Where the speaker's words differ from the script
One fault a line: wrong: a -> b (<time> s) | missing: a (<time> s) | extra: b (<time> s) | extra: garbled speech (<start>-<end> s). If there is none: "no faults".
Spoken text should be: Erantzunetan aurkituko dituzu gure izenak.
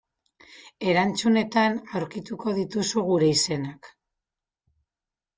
no faults